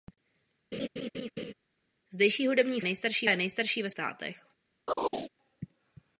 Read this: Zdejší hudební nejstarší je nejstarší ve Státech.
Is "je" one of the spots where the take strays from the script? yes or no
no